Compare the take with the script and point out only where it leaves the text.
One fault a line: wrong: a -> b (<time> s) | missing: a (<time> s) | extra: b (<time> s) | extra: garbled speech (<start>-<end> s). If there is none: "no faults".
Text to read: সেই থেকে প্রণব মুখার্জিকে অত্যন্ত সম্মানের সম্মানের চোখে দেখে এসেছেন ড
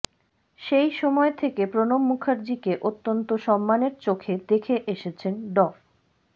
extra: সময় (0.9 s)
missing: সম্মানের (3.9 s)